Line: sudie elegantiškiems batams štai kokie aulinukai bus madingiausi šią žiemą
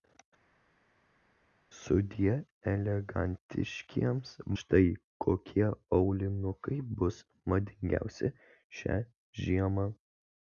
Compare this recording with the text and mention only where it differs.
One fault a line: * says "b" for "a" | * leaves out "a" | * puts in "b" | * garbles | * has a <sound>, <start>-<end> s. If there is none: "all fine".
* leaves out "batams"